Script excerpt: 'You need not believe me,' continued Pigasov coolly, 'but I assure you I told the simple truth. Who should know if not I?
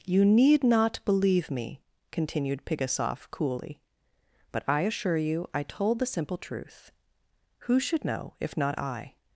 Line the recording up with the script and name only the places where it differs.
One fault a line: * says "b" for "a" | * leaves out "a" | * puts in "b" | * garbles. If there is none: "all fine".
all fine